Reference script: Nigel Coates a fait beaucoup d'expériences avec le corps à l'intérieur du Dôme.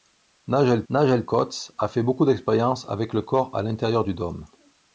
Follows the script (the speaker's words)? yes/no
no